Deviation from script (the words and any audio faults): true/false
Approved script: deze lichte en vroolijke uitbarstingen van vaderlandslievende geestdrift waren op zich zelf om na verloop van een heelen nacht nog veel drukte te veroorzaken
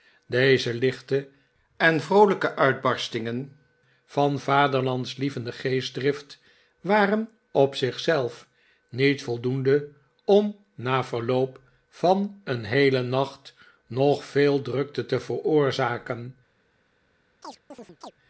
true